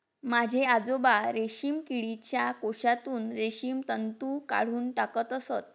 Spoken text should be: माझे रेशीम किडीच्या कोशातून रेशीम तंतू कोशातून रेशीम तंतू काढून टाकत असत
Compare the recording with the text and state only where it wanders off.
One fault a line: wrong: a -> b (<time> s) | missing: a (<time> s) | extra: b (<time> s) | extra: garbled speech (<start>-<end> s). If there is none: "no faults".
extra: आजोबा (0.7 s)
missing: कोशातून रेशीम तंतू (4.4 s)